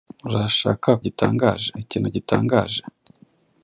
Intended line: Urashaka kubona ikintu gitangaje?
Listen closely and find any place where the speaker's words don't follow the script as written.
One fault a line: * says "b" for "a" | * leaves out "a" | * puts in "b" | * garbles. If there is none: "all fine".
* says "gitangaje" for "kubona"